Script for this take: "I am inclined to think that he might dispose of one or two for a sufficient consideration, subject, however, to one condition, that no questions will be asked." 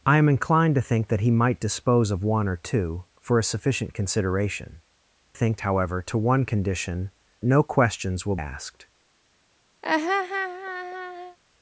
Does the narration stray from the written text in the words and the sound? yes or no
yes